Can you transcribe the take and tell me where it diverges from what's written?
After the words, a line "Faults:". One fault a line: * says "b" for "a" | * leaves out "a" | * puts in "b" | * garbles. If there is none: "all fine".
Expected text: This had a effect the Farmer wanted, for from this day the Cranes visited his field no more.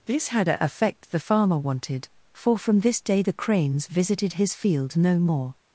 This had a effect the Farmer wanted, for from this day the Cranes visited his field no more.
Faults:
all fine